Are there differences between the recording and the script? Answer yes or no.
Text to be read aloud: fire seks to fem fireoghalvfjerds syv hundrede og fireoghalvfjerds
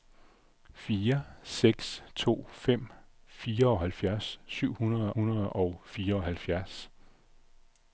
yes